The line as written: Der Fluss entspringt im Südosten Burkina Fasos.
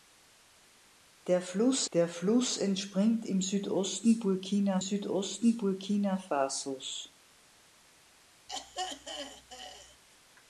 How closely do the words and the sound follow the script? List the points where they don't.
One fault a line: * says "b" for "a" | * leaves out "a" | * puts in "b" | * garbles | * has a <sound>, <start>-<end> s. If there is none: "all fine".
* puts in "der Fluss"
* puts in "Südosten Burkina"
* has a throat clearing, 8.5-10.0 s